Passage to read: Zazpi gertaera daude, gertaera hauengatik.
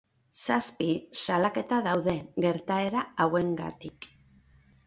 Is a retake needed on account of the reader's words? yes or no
yes